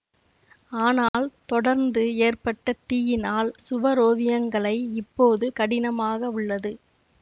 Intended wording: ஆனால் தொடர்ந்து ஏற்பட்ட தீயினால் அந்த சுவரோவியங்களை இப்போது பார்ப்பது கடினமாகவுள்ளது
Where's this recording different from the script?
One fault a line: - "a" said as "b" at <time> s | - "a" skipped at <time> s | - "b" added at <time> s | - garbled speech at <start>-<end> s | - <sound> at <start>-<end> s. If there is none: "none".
- dropout at 1.1-1.1 s
- "அந்த" skipped at 3.5 s
- "பார்ப்பது" skipped at 5.5 s